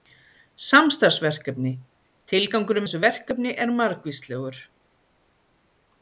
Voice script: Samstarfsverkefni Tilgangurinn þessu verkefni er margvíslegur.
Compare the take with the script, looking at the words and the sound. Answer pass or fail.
pass